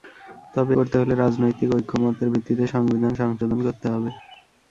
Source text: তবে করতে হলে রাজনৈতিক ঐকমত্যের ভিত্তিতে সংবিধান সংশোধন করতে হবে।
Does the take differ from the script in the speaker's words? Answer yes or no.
no